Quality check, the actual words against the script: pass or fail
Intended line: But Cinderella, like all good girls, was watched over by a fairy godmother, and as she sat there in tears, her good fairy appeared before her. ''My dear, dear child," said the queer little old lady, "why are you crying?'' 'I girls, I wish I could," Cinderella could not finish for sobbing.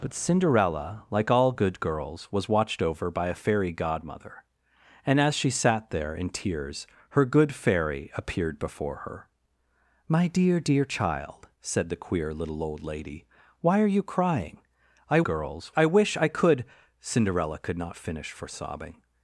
pass